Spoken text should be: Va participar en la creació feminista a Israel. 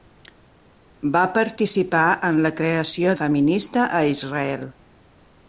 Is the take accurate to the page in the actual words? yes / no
yes